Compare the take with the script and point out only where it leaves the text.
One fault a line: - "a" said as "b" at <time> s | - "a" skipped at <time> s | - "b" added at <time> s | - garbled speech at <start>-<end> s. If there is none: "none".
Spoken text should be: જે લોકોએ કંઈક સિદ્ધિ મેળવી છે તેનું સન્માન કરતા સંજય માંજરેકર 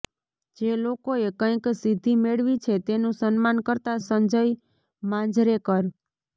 none